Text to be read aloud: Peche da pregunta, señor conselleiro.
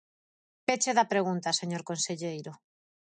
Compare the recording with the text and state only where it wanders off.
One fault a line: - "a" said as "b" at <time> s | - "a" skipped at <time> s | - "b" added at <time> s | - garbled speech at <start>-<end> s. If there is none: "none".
none